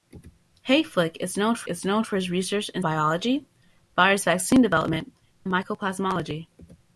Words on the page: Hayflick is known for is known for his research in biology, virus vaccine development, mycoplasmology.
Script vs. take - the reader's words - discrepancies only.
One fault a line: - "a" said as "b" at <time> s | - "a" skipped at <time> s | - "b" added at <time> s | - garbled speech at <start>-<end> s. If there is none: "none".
none